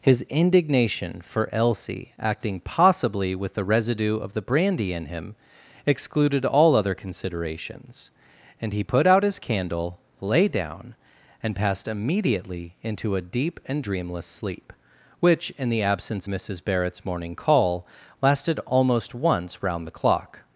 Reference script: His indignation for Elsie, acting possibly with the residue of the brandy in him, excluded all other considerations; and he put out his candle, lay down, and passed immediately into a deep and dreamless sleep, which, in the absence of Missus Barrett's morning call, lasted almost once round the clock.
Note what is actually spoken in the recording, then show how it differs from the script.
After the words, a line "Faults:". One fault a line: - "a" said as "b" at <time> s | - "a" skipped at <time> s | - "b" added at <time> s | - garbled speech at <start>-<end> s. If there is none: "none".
His indignation for Elsie, acting possibly with the residue of the brandy in him, excluded all other considerations; and he put out his candle, lay down, and passed immediately into a deep and dreamless sleep, which, in the absence Missus Barrett's morning call, lasted almost once round the clock.
Faults:
- "of" skipped at 16.3 s